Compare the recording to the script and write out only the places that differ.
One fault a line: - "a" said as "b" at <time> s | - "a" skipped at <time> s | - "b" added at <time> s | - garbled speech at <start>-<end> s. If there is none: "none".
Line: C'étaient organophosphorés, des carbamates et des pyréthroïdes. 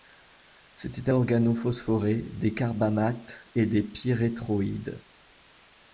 none